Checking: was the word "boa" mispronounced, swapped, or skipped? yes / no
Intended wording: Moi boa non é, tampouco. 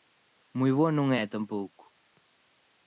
no